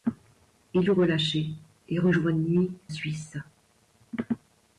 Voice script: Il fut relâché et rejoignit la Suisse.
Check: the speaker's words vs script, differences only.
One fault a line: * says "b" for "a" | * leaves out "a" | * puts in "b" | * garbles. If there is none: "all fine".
* leaves out "fut"
* leaves out "la"